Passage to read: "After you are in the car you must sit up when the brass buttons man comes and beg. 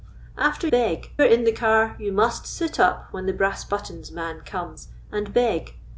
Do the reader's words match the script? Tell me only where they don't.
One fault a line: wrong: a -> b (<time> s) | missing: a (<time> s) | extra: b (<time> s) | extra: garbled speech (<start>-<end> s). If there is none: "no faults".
wrong: you -> beg (0.7 s)